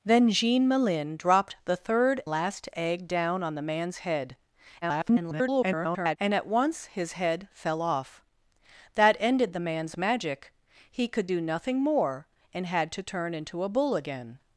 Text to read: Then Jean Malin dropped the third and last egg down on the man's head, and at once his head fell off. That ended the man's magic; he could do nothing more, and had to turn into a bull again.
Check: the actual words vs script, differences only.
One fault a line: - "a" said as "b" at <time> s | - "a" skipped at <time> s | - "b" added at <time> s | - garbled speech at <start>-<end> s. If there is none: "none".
- "and" skipped at 2.2 s
- garbled speech at 4.8-6.2 s